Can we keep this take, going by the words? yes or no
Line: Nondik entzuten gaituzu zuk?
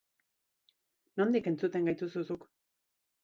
yes